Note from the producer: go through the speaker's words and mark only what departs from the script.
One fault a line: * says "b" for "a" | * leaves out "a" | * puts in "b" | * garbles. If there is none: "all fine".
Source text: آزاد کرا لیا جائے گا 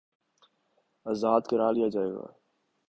all fine